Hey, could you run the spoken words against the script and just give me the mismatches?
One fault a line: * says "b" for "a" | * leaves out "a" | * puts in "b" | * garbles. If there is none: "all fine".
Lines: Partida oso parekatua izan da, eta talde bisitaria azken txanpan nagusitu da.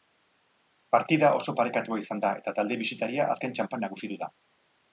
all fine